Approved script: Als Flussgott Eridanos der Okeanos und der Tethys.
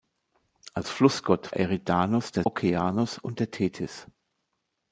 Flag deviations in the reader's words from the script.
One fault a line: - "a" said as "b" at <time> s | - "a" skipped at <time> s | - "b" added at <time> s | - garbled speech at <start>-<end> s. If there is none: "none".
none